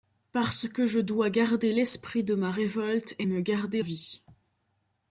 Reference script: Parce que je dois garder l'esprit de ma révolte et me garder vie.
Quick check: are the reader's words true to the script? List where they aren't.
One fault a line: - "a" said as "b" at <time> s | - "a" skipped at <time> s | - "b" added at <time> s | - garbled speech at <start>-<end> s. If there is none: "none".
none